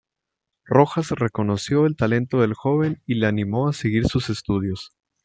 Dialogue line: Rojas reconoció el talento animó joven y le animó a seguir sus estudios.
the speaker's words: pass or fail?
fail